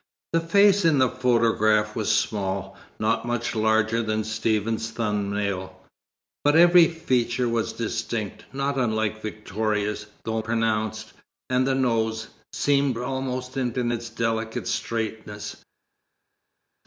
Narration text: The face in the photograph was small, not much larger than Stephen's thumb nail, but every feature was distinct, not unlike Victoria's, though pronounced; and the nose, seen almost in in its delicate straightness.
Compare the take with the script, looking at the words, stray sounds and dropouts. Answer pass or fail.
pass